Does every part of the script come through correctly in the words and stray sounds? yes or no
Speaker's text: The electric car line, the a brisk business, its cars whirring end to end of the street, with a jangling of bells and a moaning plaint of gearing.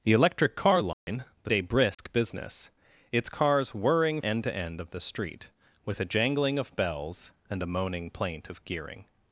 no